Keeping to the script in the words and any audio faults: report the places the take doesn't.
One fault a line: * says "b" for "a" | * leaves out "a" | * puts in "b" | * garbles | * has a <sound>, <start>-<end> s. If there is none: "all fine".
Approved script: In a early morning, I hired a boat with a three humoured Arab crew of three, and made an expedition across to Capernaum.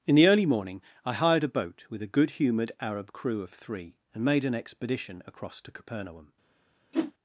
* says "the" for "a"
* says "good" for "three"
* has a whoosh, 6.9-7.1 s